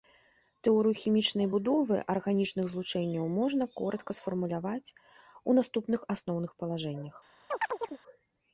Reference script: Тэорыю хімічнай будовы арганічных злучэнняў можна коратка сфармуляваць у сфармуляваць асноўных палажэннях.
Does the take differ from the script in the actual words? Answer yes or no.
yes